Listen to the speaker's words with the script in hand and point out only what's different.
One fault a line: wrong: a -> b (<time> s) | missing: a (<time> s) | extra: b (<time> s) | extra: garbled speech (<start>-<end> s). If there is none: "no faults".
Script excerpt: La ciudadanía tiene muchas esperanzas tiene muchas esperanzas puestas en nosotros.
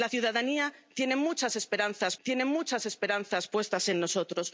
no faults